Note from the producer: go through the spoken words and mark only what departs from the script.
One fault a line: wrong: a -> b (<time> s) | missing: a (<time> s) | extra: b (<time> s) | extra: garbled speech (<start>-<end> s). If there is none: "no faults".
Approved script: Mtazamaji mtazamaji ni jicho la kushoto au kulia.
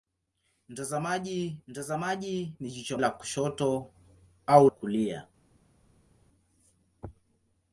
no faults